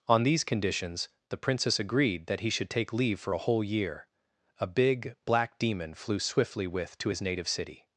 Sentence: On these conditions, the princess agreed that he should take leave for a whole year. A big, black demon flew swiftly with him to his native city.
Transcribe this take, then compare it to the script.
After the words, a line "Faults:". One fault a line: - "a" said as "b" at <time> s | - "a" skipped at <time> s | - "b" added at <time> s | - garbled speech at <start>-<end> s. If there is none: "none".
On these conditions, the princess agreed that he should take leave for a whole year. A big, black demon flew swiftly with to his native city.
Faults:
- "him" skipped at 7.0 s